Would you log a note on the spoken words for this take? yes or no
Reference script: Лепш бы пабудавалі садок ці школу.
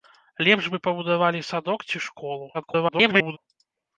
yes